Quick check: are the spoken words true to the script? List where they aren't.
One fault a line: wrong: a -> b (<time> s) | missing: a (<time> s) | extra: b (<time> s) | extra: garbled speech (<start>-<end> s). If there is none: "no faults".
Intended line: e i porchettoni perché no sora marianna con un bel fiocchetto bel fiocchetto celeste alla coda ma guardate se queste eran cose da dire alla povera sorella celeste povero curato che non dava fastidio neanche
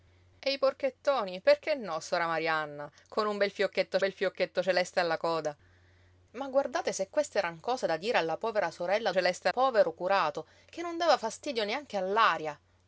no faults